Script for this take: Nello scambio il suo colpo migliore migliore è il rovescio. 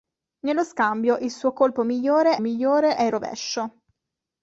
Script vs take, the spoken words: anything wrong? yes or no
no